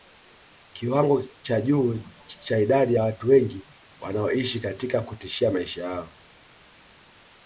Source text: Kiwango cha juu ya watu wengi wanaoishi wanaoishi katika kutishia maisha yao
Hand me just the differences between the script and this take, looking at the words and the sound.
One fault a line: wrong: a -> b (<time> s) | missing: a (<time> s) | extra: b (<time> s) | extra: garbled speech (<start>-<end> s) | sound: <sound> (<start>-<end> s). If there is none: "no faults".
extra: cha idadi (2.2 s)
missing: wanaoishi (4.6 s)